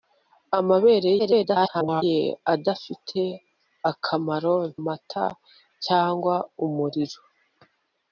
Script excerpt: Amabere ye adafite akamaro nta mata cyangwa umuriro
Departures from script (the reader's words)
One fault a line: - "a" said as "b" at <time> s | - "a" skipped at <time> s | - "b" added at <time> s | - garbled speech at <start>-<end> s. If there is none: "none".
- garbled speech at 1.2-2.0 s
- "nta" skipped at 4.6 s